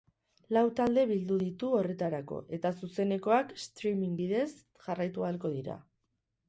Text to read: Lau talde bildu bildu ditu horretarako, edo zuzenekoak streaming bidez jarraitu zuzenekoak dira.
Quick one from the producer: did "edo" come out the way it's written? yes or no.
no